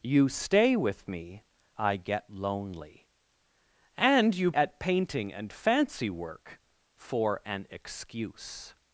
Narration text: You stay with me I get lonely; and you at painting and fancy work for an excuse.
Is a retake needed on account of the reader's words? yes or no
no